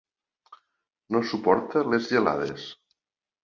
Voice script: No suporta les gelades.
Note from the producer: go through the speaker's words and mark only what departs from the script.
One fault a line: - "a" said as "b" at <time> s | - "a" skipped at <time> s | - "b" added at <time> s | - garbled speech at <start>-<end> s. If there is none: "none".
none